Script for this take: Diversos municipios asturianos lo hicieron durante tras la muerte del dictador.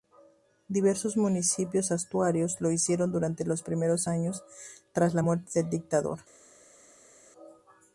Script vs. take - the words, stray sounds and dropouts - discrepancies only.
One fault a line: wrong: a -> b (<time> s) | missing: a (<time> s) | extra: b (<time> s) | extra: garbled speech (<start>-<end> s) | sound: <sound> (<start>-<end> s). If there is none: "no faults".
extra: los primeros años (3.5 s)